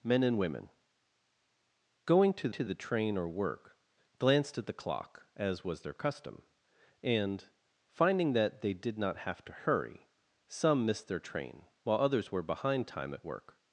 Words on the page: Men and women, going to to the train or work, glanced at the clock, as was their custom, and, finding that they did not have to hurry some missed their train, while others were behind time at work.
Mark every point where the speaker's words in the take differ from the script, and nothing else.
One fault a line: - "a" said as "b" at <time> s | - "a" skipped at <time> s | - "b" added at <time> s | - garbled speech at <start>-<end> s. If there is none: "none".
none